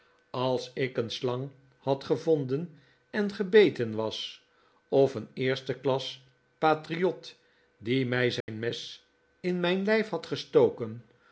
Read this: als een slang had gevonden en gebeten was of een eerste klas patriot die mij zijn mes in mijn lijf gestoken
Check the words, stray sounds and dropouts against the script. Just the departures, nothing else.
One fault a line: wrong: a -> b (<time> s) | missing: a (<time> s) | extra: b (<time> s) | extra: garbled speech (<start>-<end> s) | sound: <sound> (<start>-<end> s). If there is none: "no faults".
extra: ik (0.7 s)
sound: dropout (8.4-8.5 s)
extra: had (10.1 s)